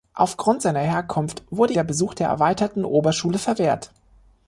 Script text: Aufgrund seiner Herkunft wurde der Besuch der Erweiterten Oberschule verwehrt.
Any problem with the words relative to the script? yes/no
no